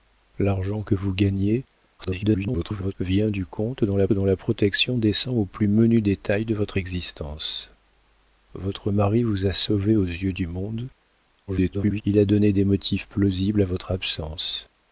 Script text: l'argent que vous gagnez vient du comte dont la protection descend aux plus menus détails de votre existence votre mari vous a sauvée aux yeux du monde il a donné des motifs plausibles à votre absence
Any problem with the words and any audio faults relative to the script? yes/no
yes